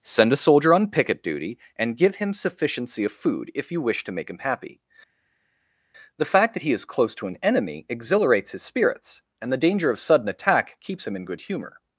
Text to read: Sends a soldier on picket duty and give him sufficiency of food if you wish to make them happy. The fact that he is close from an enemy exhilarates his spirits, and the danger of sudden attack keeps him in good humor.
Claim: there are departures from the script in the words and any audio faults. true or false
true